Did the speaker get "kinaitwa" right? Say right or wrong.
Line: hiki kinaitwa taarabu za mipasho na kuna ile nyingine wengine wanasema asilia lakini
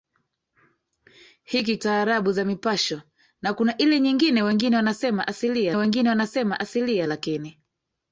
wrong